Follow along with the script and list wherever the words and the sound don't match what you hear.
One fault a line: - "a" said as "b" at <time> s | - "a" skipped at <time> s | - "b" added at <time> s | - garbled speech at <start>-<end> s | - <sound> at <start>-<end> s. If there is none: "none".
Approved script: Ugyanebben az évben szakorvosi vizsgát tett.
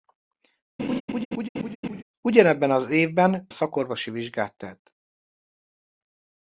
- laugh at 0.8-2.0 s